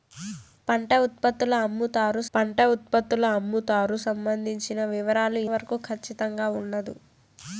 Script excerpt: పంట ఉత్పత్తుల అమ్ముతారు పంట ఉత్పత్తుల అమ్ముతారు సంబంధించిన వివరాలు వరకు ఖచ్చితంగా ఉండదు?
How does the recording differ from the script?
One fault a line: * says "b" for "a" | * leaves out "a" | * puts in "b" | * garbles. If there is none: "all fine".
all fine